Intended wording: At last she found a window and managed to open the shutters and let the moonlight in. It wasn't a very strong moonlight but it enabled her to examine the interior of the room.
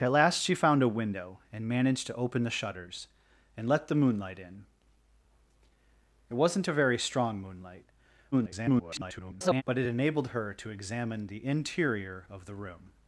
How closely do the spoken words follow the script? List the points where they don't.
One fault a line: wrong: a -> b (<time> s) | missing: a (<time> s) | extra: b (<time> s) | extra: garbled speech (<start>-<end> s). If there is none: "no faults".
extra: garbled speech (8.3-9.6 s)